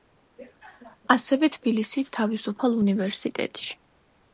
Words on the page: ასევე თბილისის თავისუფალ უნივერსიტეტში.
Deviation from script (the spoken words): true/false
false